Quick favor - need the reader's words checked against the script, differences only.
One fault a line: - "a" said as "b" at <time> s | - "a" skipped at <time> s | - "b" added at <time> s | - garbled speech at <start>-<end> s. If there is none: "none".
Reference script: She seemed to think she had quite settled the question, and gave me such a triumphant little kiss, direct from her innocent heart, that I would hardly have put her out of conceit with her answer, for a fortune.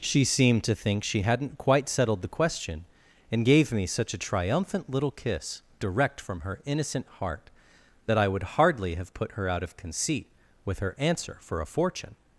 - "had" said as "hadn't" at 1.2 s